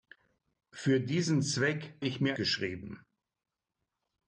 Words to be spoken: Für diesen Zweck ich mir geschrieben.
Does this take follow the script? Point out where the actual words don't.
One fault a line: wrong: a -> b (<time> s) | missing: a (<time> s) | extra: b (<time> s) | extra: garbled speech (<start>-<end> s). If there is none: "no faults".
no faults